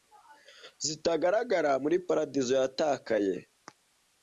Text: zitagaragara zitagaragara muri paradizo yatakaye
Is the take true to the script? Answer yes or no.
no